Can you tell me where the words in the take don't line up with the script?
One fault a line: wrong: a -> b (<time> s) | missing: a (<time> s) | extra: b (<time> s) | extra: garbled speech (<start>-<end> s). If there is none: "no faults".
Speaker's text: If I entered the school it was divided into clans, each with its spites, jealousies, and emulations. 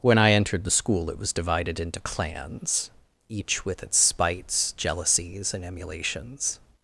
wrong: If -> When (0.0 s)